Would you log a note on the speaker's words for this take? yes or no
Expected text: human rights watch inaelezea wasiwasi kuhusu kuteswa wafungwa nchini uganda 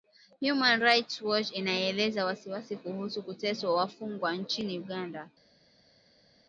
no